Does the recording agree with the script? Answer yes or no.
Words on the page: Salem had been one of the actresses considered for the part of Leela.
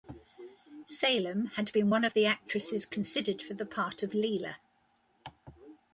yes